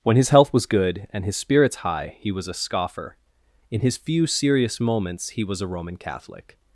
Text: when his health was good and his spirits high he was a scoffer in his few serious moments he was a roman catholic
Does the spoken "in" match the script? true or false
true